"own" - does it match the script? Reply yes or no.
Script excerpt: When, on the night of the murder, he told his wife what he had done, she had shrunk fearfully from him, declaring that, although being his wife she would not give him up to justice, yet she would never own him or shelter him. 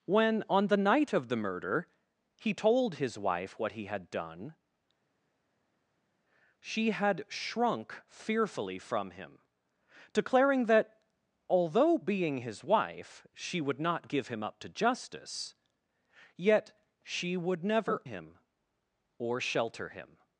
no